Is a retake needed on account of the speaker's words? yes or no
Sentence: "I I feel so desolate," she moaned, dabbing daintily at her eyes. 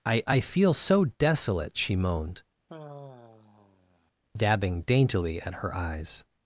no